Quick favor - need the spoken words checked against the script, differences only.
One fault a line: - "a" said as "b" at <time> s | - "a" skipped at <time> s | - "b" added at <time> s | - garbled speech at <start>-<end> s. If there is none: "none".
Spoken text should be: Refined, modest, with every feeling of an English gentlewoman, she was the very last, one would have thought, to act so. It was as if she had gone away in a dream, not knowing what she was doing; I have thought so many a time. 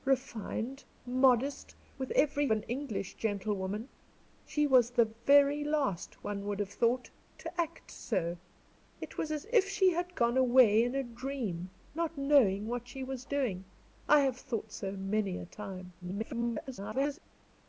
- "feeling of" skipped at 2.5 s
- garbled speech at 16.0-17.2 s